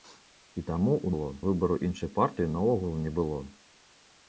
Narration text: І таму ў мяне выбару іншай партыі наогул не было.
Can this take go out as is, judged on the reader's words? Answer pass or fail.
fail